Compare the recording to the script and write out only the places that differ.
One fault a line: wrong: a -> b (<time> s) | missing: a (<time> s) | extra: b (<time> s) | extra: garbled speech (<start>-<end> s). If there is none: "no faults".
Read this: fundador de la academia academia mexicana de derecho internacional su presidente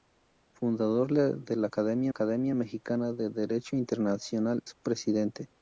no faults